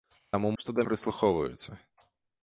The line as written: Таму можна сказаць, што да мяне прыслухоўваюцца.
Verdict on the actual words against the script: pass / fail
fail